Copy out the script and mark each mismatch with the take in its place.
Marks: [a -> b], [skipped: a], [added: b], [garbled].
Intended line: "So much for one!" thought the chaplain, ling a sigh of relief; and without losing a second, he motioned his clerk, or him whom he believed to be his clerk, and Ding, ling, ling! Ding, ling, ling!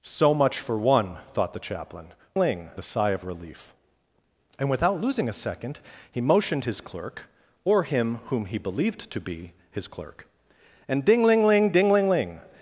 "So much for one!" thought the chaplain, ling a sigh of relief; and without losing a second, he motioned his clerk, or him whom he believed to be his clerk, and Ding, ling, ling! Ding, ling, ling!